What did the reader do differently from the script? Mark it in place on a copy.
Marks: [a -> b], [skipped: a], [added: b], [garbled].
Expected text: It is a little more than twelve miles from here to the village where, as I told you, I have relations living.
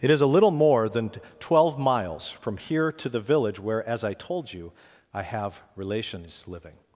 It is a little more than twelve miles from here to the village where, as I told you, I have relations living.